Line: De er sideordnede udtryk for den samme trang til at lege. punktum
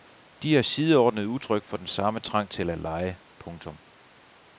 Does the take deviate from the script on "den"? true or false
false